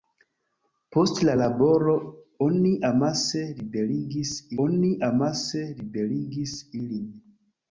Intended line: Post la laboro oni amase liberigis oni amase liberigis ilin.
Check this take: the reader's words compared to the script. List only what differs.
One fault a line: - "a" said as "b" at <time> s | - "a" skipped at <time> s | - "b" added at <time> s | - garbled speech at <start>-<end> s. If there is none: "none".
none